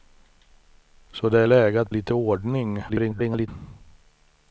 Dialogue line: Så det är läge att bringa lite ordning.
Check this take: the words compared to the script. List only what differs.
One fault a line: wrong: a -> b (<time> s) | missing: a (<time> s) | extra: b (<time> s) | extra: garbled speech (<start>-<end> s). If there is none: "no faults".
missing: bringa (1.9 s)
extra: garbled speech (2.9-3.5 s)